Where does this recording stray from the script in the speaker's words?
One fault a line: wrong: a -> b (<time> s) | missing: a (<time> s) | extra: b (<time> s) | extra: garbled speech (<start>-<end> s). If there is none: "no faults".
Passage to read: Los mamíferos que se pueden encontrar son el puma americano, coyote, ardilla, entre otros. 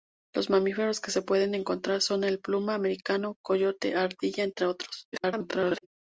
extra: garbled speech (5.1-5.9 s)